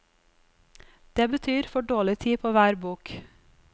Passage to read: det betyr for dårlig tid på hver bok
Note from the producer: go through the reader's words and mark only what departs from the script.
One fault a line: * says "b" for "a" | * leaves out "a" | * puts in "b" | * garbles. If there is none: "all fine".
all fine